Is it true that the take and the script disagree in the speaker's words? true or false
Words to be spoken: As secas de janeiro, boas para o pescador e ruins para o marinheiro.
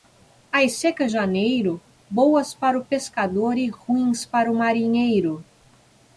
true